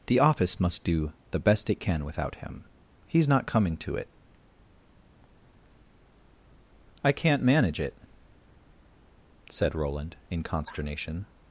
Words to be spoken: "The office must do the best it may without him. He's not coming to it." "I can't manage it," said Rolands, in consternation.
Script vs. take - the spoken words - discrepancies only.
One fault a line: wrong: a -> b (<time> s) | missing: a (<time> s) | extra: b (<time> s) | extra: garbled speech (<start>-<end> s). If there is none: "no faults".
wrong: may -> can (1.8 s)
wrong: Rolands -> Roland (9.8 s)